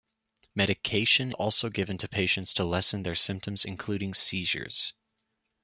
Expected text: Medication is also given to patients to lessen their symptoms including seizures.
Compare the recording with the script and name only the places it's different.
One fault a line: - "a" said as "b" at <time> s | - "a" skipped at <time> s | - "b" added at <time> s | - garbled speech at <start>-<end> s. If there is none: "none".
- "is" skipped at 1.3 s